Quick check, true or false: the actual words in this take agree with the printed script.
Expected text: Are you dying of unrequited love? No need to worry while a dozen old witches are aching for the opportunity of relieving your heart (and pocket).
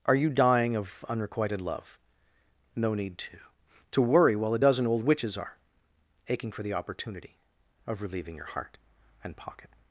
false